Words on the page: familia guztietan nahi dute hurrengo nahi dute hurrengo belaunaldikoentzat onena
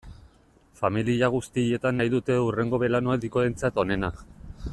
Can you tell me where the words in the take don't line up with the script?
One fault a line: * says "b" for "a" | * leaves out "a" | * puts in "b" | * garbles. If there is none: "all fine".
* leaves out "nahi dute hurrengo"